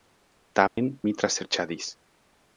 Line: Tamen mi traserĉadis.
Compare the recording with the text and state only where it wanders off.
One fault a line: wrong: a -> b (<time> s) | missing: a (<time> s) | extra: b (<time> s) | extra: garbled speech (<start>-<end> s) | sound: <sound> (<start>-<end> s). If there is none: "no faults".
sound: dropout (0.7-0.8 s)